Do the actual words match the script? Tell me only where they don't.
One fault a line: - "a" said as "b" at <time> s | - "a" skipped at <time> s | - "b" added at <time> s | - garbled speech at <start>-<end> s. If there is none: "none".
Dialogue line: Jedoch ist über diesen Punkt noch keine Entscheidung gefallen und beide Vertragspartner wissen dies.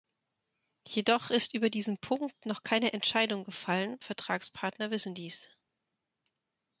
- "und beide" skipped at 4.0 s